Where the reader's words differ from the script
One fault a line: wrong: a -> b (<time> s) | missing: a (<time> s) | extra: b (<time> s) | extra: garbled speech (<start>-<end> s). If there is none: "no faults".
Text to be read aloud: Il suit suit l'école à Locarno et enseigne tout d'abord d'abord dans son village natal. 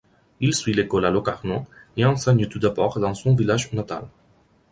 missing: suit (0.7 s)
missing: d'abord (3.0 s)